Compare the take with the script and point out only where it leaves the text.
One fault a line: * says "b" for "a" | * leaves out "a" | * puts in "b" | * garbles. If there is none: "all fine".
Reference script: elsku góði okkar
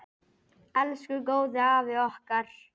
* puts in "afi"